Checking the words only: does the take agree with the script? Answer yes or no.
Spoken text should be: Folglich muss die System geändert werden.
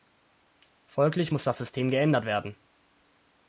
no